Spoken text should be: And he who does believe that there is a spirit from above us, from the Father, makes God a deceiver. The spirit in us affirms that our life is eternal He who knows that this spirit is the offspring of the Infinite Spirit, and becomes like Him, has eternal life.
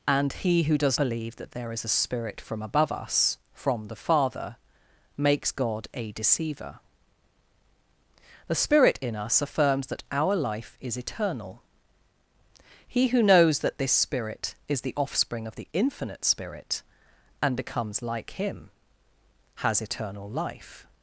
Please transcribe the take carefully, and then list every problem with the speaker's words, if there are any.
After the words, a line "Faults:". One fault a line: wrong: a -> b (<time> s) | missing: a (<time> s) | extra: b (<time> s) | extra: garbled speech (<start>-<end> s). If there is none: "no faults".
And he who does believe that there is a spirit from above us, from the Father, makes God a deceiver. The spirit in us affirms that our life is eternal He who knows that this spirit is the offspring of the Infinite Spirit, and becomes like Him, has eternal life.
Faults:
no faults